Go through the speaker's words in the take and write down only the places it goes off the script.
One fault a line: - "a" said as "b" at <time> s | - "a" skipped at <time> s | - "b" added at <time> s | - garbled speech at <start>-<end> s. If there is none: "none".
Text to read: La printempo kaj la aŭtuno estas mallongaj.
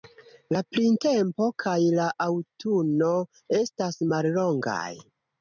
none